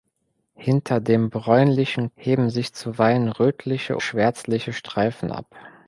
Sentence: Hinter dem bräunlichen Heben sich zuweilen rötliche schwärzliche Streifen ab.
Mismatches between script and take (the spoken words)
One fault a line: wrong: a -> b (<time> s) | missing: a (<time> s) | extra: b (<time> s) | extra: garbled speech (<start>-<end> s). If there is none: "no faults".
no faults